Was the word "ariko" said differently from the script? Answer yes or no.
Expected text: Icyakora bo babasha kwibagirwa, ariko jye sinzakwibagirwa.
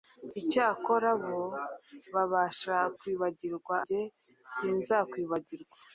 yes